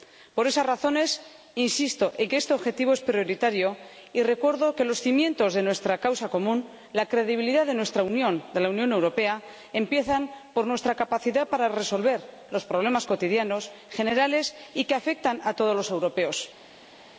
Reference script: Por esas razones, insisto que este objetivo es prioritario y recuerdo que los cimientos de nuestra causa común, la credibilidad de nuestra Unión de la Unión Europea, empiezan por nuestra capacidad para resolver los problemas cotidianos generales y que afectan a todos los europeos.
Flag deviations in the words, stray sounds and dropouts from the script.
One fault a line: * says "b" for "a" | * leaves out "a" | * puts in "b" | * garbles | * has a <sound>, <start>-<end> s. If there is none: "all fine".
* puts in "en"